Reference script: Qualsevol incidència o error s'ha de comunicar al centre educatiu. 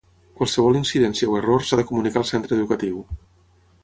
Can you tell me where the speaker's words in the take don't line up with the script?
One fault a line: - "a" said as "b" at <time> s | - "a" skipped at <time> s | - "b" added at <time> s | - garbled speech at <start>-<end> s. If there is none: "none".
none